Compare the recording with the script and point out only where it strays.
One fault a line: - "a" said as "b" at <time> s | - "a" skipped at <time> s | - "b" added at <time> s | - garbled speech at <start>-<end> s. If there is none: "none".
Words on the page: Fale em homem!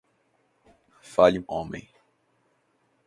none